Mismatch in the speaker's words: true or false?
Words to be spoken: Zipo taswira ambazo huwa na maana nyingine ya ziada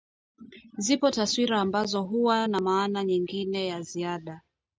false